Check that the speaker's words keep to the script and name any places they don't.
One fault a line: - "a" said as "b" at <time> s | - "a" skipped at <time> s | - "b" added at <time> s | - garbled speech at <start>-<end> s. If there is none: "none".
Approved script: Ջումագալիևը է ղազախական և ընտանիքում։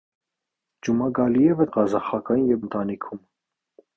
none